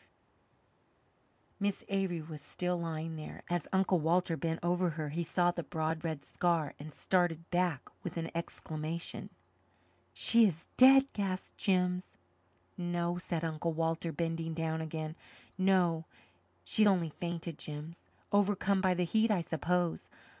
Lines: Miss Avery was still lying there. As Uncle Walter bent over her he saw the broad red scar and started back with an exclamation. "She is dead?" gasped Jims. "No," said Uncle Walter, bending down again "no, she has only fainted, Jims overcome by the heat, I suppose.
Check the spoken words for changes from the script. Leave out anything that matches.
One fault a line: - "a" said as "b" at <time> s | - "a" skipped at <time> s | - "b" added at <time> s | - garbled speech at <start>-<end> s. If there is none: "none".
- "has" skipped at 16.8 s